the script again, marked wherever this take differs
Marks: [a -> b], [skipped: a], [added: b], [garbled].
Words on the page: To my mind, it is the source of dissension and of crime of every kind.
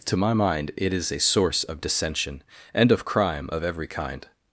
To my mind, it is [the -> a] source of dissension and of crime of every kind.